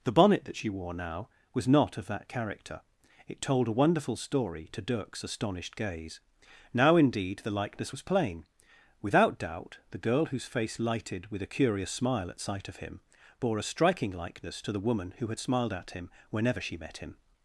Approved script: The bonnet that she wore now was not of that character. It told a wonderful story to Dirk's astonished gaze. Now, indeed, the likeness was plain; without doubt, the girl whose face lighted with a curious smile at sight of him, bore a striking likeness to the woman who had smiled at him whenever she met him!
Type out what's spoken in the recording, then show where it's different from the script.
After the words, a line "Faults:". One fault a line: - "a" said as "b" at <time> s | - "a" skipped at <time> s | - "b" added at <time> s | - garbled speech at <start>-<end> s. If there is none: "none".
The bonnet that she wore now was not of that character. It told a wonderful story to Dirk's astonished gaze. Now, indeed, the likeness was plain; without doubt, the girl whose face lighted with a curious smile at sight of him, bore a striking likeness to the woman who had smiled at him whenever she met him!
Faults:
none